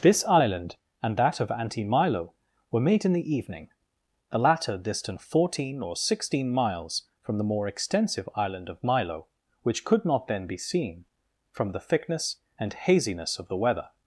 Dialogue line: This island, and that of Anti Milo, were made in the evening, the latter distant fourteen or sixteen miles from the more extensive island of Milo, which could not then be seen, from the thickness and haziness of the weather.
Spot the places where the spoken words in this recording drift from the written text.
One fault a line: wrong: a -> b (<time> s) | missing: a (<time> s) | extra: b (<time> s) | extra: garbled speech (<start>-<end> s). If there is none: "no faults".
no faults